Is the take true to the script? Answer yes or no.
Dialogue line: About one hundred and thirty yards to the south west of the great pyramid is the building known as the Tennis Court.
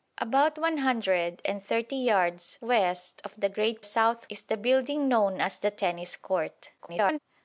no